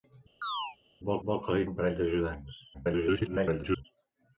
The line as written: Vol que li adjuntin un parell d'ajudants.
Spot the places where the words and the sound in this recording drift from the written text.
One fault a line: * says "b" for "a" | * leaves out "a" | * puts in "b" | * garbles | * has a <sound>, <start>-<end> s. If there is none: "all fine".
* has a chirp, 0.4-0.8 s
* puts in "vol"
* leaves out "adjuntin"
* garbles